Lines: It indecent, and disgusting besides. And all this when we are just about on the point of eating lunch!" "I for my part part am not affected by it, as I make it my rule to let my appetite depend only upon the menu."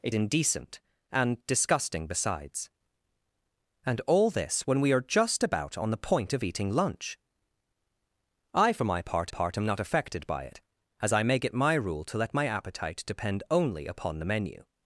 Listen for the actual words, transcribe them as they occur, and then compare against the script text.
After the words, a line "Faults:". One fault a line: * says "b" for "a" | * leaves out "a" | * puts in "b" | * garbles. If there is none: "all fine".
It indecent, and disgusting besides. And all this when we are just about on the point of eating lunch!" "I for my part part am not affected by it, as I make it my rule to let my appetite depend only upon the menu."
Faults:
all fine